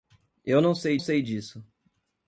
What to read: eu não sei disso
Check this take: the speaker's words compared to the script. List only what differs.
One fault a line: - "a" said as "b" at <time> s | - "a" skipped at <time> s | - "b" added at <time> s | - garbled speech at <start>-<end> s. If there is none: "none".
- "sei" added at 1.0 s